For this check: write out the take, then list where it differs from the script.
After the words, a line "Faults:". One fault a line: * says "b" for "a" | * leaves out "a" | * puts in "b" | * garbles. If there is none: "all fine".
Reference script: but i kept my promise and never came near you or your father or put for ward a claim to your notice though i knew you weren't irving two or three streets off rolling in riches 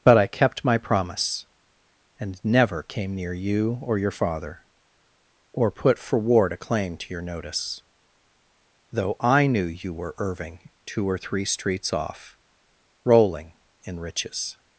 but i kept my promise and never came near you or your father or put for ward a claim to your notice though i knew you were irving two or three streets off rolling in riches
Faults:
* says "were" for "weren't"